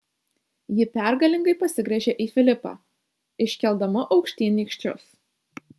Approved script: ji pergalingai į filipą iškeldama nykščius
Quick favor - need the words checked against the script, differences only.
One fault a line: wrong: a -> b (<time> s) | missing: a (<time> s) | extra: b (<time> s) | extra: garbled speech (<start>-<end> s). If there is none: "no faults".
extra: pasigręžė (1.6 s)
extra: aukštyn (4.2 s)